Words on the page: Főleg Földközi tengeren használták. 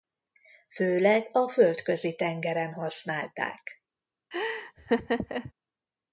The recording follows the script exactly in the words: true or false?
false